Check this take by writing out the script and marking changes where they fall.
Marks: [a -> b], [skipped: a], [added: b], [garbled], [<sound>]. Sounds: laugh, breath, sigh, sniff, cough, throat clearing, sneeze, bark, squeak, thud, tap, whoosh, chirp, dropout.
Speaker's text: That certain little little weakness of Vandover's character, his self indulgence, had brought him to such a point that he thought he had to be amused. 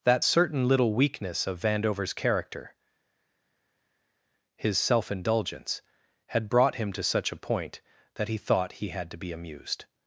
That certain little [skipped: little] weakness of Vandover's character, his self indulgence, had brought him to such a point that he thought he had to be amused.